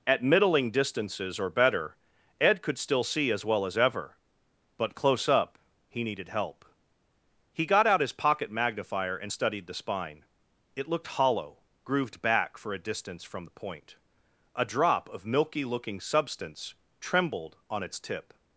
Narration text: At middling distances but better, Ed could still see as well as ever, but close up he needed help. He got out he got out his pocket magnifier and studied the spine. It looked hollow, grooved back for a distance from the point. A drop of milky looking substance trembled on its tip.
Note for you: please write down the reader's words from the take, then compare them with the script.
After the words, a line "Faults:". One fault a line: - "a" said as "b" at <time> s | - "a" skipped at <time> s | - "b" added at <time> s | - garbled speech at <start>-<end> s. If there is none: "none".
At middling distances or better, Ed could still see as well as ever, but close up he needed help. He got out his pocket magnifier and studied the spine. It looked hollow, grooved back for a distance from the point. A drop of milky looking substance trembled on its tip.
Faults:
- "but" said as "or" at 1.4 s
- "he got out" skipped at 8.0 s